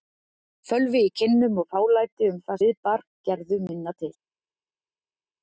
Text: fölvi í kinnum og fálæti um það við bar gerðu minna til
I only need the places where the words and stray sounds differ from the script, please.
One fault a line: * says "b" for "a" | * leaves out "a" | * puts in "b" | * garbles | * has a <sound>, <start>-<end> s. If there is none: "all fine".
all fine